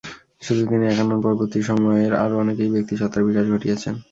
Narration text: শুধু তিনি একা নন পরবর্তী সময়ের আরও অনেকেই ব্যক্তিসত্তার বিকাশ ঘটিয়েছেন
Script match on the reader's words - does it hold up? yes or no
yes